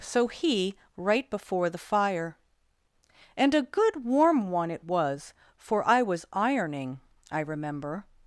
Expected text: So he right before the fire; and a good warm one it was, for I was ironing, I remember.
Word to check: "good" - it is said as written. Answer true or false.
true